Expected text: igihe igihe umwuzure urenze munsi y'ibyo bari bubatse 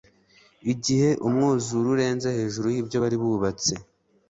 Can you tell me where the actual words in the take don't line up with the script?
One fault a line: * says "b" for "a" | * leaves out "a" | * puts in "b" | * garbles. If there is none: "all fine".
* leaves out "igihe"
* says "hejuru" for "munsi"